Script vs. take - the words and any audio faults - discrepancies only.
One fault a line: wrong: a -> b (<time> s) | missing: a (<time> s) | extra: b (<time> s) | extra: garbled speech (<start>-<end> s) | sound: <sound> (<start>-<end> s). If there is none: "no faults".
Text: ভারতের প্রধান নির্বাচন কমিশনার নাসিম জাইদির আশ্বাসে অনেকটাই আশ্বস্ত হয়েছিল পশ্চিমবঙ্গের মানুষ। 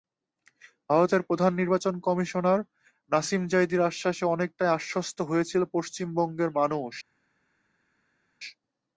no faults